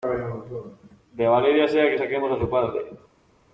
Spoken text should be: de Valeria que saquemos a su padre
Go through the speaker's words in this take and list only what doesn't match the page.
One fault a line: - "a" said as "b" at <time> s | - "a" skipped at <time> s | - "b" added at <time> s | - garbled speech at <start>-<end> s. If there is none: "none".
- "sea" added at 1.7 s